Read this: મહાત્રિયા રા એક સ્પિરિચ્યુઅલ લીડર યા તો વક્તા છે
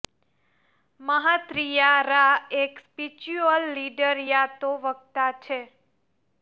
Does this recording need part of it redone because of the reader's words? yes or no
no